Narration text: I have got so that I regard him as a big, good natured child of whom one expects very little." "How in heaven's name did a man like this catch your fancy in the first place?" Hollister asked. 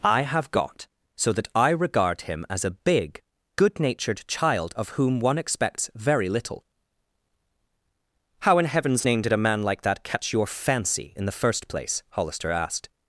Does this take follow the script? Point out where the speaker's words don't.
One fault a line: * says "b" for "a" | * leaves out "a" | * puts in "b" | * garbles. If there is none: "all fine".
* says "that" for "this"